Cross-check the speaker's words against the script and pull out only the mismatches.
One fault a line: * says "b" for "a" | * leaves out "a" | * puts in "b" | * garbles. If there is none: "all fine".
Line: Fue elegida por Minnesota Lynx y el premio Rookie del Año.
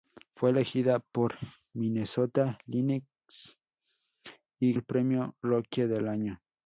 all fine